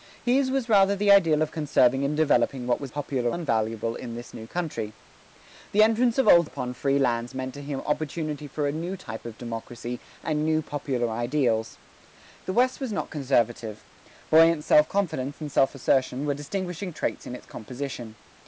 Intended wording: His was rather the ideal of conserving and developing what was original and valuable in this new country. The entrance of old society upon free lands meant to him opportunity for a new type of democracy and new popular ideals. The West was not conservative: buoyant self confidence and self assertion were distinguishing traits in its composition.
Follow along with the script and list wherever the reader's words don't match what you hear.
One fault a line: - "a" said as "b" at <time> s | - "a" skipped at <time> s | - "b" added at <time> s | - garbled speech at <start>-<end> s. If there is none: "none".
- "original" said as "popular" at 2.8 s
- "society" skipped at 6.5 s